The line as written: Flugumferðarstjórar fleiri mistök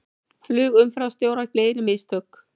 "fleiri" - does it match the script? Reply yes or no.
yes